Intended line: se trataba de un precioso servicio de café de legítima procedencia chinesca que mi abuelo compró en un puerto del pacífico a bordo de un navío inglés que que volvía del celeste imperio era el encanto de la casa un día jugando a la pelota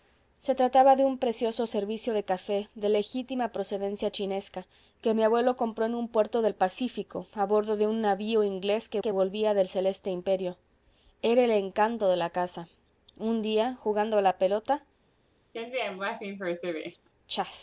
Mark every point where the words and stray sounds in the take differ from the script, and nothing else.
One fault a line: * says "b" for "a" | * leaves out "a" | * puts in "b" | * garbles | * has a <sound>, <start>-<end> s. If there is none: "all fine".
* has a laugh, 15.5-17.1 s